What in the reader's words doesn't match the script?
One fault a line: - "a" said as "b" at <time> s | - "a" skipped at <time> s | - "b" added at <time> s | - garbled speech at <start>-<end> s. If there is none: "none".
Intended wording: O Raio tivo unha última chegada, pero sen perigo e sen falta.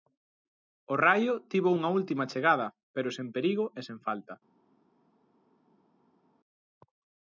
none